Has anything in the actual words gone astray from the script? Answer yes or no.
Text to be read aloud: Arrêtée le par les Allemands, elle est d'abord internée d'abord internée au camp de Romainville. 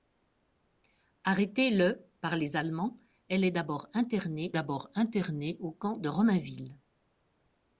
no